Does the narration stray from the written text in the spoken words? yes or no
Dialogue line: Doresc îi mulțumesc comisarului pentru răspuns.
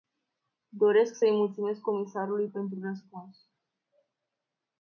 yes